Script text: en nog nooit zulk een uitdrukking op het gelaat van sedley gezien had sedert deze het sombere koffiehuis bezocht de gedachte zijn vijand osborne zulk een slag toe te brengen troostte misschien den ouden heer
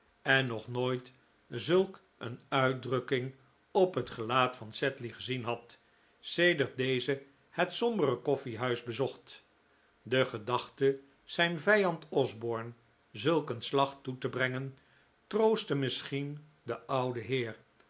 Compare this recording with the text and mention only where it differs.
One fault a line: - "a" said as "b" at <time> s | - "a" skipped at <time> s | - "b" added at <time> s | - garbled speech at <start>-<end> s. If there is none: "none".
none